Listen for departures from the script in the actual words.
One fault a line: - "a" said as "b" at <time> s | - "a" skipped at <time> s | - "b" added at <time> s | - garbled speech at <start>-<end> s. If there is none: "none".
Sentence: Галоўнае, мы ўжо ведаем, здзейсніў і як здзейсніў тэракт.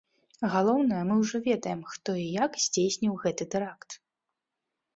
- "здзейсніў" said as "хто" at 1.9 s
- "гэты" added at 3.3 s